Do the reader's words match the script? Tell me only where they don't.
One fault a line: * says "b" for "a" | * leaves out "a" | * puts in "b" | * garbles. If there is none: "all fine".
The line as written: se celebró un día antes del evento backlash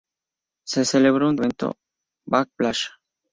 * leaves out "día antes del"